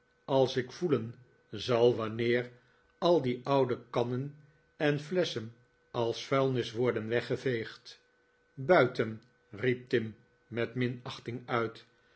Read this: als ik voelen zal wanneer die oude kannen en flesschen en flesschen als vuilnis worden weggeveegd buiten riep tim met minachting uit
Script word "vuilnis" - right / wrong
right